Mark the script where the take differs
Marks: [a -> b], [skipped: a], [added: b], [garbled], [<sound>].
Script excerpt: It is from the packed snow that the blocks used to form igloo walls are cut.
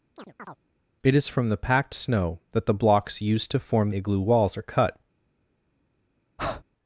[chirp] It is from the packed snow that the blocks used to form igloo walls are cut. [breath]